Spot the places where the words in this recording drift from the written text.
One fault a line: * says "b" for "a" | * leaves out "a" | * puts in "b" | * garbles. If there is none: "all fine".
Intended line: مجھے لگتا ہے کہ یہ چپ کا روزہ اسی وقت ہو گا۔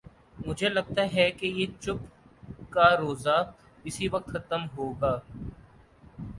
* puts in "ختم"